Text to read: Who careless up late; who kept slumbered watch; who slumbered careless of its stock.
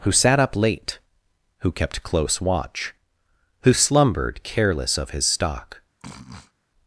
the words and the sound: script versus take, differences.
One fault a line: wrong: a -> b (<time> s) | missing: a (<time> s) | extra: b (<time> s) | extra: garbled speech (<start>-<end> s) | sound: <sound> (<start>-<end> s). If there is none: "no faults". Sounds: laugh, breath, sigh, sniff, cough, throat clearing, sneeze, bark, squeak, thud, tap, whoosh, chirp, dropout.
wrong: careless -> sat (0.1 s)
wrong: slumbered -> close (2.0 s)
wrong: its -> his (5.1 s)
sound: sniff (6.0-6.5 s)